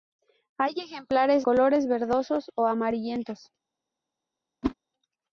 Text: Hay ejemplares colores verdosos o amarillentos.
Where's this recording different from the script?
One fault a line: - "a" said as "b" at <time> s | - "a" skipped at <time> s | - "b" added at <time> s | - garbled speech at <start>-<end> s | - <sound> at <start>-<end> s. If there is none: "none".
- whoosh at 4.6-4.7 s